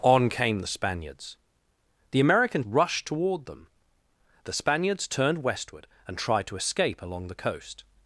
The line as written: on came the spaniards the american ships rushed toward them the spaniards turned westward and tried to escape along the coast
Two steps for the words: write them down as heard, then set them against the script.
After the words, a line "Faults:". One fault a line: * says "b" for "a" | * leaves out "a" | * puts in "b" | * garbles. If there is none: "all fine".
on came the spaniards the american rushed toward them the spaniards turned westward and tried to escape along the coast
Faults:
* leaves out "ships"